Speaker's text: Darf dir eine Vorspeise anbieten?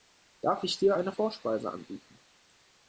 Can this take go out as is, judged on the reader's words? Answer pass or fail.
fail